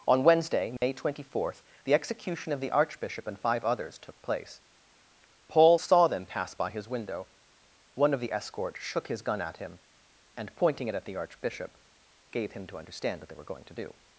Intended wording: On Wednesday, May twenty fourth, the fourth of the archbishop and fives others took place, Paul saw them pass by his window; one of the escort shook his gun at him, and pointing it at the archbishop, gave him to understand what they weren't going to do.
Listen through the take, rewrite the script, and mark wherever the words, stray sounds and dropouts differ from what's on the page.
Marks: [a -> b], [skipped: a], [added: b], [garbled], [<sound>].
On Wednesday, May [dropout] twenty fourth, the [fourth -> execution] of the archbishop and [fives -> five] others took place, Paul saw them pass by his window; one of the escort shook his gun at him, and pointing it at the archbishop, gave him to understand what they [weren't -> were] going to do.